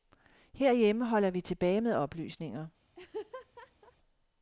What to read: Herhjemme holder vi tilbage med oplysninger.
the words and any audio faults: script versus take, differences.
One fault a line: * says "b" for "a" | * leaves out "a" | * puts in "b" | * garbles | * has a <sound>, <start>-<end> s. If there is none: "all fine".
* has a laugh, 2.9-4.0 s